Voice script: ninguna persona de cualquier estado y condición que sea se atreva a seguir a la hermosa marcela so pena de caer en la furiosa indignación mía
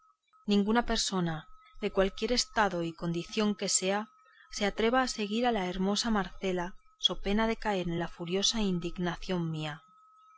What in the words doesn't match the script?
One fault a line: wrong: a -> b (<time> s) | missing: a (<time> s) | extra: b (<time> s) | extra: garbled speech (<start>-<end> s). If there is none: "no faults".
no faults